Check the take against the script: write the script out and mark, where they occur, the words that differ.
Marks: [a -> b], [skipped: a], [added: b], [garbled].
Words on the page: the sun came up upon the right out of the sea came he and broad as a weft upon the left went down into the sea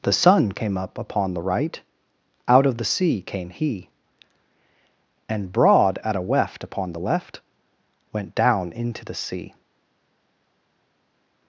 the sun came up upon the right out of the sea came he and broad [as -> at] a weft upon the left went down into the sea